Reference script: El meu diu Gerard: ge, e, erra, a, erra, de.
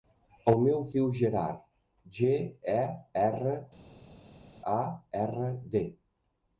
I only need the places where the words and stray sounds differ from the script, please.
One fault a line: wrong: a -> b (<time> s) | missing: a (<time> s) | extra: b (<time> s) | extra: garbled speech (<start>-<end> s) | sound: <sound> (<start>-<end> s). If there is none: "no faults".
no faults